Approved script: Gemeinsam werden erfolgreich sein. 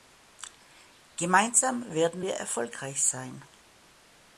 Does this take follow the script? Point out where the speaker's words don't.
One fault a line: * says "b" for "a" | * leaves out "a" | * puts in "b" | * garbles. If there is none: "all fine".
* puts in "wir"